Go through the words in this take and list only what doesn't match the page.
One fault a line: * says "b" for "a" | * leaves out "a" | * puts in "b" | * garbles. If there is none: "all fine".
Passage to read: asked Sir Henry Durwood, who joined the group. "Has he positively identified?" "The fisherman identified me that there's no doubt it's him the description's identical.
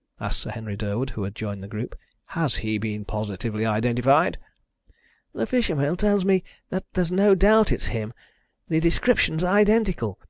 * puts in "had"
* puts in "been"
* says "tells" for "identified"